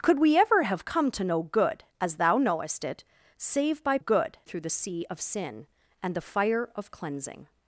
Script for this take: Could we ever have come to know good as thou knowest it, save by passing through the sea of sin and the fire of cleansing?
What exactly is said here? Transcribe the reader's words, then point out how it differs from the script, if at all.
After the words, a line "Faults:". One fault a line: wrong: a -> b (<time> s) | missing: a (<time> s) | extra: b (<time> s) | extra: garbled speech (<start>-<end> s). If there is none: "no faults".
Could we ever have come to know good as thou knowest it, save by good through the sea of sin and the fire of cleansing?
Faults:
wrong: passing -> good (4.0 s)